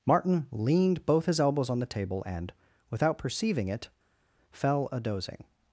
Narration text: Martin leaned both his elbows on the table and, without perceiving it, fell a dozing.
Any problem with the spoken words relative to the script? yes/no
no